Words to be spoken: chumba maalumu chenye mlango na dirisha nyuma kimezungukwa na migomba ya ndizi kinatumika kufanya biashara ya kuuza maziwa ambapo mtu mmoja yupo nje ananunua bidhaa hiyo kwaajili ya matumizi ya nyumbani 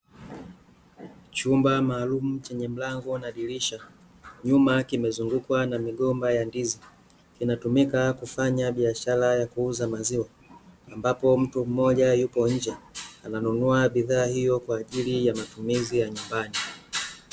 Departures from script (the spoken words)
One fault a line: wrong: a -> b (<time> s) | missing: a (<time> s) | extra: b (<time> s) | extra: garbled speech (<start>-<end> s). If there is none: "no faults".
no faults